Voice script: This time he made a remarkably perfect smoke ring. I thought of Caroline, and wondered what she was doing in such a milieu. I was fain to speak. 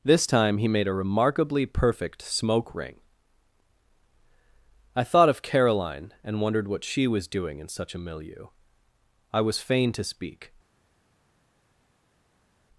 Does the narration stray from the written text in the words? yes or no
no